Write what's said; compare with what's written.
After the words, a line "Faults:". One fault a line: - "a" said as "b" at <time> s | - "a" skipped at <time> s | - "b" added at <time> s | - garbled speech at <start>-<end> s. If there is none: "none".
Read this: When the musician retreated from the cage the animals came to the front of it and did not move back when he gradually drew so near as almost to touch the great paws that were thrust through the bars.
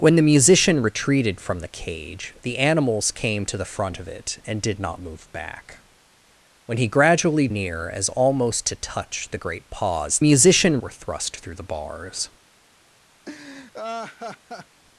When the musician retreated from the cage the animals came to the front of it and did not move back when he gradually near as almost to touch the great paws musician were thrust through the bars.
Faults:
- "drew so" skipped at 7.5 s
- "that" said as "musician" at 10.2 s